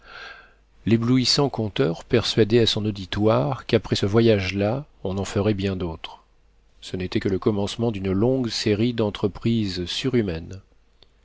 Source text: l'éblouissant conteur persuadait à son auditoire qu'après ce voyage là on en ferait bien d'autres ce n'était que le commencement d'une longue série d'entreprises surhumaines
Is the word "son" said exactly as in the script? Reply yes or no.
yes